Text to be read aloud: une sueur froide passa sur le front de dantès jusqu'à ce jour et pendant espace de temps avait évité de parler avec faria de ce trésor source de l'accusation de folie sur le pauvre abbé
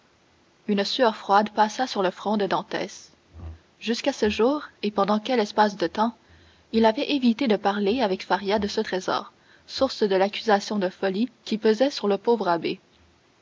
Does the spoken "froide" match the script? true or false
true